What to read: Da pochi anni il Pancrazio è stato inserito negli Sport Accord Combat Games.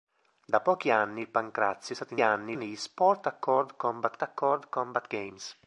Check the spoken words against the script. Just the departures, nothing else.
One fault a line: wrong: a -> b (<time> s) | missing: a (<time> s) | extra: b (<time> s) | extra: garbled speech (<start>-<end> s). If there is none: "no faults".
wrong: inserito -> anni (2.2 s)
extra: Accord Combat (4.2 s)